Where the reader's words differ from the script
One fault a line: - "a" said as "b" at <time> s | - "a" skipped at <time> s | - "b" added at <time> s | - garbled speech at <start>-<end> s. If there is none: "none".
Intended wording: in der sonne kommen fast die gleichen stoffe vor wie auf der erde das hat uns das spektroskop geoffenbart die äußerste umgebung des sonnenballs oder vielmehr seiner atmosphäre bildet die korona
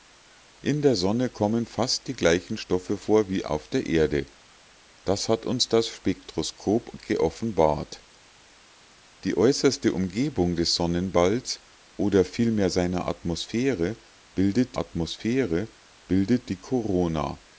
- "atmosphäre bildet" added at 14.8 s